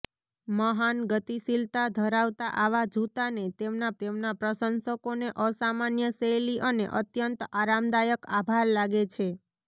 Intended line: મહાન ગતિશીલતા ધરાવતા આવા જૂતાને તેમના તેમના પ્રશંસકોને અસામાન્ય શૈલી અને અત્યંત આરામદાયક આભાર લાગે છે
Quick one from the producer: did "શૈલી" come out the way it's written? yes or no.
yes